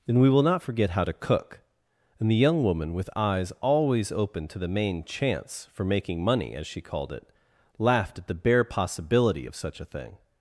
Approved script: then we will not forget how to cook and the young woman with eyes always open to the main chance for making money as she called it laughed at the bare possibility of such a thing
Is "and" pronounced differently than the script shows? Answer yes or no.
no